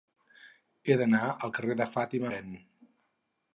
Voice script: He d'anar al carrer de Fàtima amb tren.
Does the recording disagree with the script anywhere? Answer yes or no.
yes